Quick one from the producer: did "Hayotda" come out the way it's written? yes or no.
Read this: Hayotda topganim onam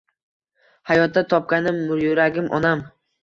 yes